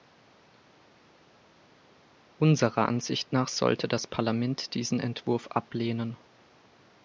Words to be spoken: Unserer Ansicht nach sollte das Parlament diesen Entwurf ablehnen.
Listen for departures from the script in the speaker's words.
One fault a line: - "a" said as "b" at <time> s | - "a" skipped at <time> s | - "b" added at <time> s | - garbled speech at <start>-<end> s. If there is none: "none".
none